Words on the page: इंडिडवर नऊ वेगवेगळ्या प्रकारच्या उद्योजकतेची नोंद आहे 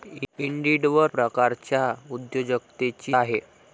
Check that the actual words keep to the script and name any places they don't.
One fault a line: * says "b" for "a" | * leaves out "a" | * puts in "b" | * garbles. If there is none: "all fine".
* leaves out "नऊ वेगवेगळ्या"
* leaves out "नोंद"